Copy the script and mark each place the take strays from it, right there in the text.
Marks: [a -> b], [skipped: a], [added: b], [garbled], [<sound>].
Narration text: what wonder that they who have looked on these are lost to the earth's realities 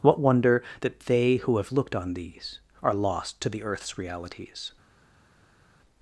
what wonder that they who have looked on these are lost to the earth's realities